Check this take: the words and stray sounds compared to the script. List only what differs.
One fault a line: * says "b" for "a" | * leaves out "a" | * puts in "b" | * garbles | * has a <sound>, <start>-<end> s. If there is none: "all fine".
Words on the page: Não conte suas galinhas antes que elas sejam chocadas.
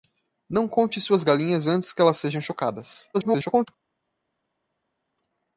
* garbles